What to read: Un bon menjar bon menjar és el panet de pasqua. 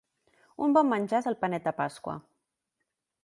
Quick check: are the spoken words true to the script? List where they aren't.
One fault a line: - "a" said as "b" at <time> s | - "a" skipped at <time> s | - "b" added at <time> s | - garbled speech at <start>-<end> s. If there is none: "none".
- "bon menjar" skipped at 1.2 s